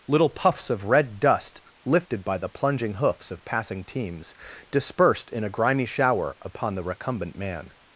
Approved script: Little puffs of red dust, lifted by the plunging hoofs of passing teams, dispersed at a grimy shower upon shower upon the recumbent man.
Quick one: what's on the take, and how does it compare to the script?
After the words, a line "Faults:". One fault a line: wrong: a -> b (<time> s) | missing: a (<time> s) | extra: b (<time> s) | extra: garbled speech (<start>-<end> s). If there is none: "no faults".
Little puffs of red dust, lifted by the plunging hoofs of passing teams, dispersed in a grimy shower upon the recumbent man.
Faults:
wrong: at -> in (5.3 s)
missing: shower upon (6.7 s)